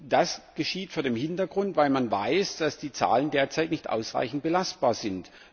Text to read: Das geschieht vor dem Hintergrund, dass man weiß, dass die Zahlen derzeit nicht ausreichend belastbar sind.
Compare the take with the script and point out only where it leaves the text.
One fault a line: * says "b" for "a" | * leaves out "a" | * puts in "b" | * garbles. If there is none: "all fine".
all fine